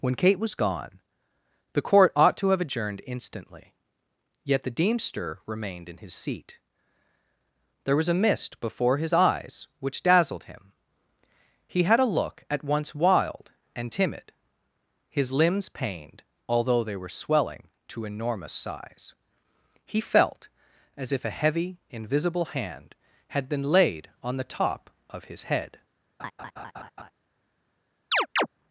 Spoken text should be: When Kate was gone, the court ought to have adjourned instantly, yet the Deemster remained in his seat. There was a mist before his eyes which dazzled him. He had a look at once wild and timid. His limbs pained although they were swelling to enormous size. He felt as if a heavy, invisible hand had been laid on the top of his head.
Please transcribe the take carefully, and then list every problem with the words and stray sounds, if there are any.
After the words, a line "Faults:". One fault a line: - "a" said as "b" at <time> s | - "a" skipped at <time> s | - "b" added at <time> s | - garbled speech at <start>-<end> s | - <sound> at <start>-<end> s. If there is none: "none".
When Kate was gone, the court ought to have adjourned instantly, yet the Deemster remained in his seat. There was a mist before his eyes which dazzled him. He had a look at once wild and timid. His limbs pained although they were swelling to enormous size. He felt as if a heavy, invisible hand had been laid on the top of his head.
Faults:
- laugh at 26.2-27.1 s
- chirp at 28.1-28.5 s